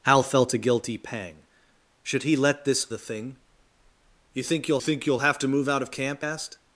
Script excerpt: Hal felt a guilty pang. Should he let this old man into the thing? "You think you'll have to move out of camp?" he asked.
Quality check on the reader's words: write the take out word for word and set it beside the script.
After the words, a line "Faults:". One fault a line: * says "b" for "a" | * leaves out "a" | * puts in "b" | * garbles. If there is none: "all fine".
Hal felt a guilty pang. Should he let this the thing? "You think you'll think you'll have to move out of camp?" asked.
Faults:
* leaves out "old man into"
* puts in "think you'll"
* leaves out "he"